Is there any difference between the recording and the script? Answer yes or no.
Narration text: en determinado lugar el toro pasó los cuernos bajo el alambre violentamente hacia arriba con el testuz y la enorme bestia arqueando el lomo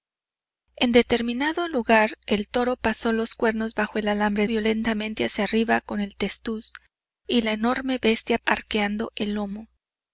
no